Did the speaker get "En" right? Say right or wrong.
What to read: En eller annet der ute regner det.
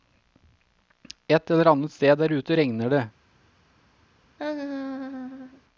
wrong